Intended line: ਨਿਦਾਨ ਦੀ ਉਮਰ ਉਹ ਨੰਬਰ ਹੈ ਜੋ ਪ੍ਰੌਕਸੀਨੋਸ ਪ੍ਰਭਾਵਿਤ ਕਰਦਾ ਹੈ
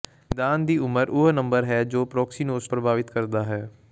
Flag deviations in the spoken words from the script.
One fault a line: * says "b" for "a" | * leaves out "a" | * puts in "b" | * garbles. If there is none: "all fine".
all fine